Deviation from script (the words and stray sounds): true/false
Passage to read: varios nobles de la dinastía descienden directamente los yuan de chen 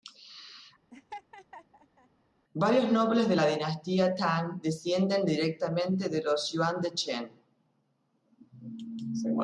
true